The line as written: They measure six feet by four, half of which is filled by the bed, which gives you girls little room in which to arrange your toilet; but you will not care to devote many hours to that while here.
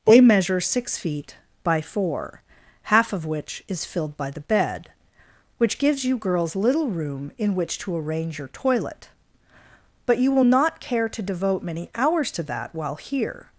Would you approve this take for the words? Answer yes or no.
yes